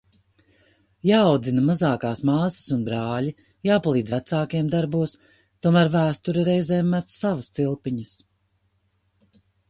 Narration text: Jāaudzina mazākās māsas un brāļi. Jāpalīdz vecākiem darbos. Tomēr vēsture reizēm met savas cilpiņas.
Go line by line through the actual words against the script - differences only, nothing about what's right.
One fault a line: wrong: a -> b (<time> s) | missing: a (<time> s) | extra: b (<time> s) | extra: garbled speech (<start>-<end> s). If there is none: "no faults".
no faults